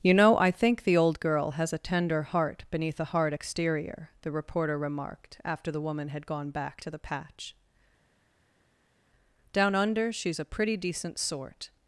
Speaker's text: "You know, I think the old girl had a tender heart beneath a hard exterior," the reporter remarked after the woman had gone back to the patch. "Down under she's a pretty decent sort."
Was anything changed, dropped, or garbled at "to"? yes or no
no